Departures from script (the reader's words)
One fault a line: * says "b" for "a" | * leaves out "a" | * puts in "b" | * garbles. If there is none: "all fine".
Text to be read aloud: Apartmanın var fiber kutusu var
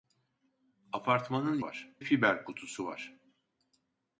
all fine